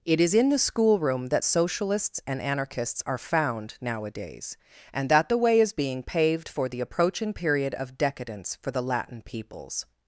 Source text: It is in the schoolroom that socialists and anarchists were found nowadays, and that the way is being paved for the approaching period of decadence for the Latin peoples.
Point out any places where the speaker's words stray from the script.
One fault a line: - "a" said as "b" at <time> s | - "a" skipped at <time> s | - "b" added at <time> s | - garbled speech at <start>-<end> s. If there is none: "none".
- "were" said as "are" at 3.0 s